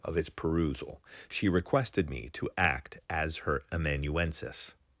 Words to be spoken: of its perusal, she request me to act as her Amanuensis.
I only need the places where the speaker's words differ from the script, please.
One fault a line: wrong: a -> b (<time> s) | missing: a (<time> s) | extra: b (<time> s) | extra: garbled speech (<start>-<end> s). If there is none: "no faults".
wrong: request -> requested (1.5 s)